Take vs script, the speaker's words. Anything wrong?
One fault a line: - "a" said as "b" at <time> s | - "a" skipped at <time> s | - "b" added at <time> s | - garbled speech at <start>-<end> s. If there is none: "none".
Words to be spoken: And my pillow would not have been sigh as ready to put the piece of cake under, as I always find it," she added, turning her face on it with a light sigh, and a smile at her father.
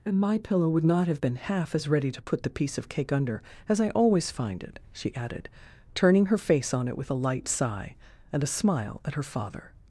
- "sigh" said as "half" at 1.4 s